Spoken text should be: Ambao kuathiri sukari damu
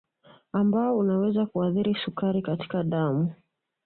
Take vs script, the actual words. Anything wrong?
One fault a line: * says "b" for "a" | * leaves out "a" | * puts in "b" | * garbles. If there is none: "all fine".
* puts in "unaweza"
* puts in "katika"